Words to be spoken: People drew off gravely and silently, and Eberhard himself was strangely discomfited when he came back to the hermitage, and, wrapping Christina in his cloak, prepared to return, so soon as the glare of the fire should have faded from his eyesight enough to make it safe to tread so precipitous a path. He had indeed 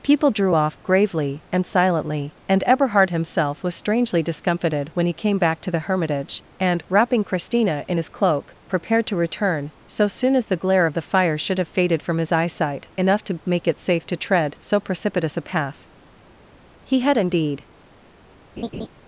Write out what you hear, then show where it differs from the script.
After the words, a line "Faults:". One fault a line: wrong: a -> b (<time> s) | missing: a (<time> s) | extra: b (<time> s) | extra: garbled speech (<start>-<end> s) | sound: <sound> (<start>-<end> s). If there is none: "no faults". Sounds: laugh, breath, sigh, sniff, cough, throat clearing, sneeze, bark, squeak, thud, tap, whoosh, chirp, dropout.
People drew off gravely and silently, and Eberhard himself was strangely discomfited when he came back to the hermitage, and, wrapping Christina in his cloak, prepared to return, so soon as the glare of the fire should have faded from his eyesight enough to make it safe to tread so precipitous a path. He had indeed
Faults:
sound: laugh (18.6-18.9 s)